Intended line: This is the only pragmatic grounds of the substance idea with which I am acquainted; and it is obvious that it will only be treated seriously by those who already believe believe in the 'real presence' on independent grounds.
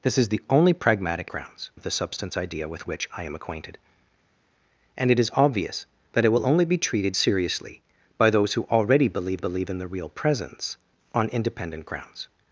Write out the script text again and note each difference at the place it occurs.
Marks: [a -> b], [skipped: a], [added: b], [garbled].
This is the only pragmatic grounds of the substance idea with which I am acquainted; and it is obvious that it will only be treated seriously by those who already believe believe in the 'real presence' on independent grounds.